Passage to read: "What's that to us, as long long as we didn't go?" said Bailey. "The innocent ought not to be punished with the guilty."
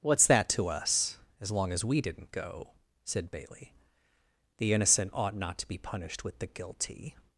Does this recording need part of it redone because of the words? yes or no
yes